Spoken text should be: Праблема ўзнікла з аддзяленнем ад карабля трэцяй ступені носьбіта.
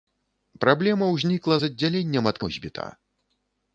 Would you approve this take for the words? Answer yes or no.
no